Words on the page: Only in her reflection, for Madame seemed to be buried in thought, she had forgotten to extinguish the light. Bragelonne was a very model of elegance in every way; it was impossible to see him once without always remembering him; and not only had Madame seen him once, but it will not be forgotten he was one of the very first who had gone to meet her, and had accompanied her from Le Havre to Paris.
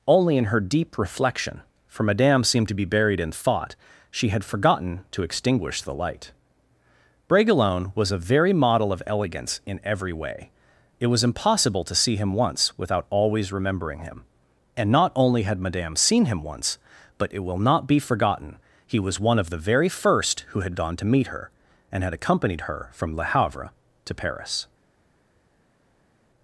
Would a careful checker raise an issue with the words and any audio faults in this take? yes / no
yes